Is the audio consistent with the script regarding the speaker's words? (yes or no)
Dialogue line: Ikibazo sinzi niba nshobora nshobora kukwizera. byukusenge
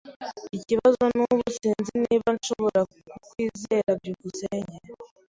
no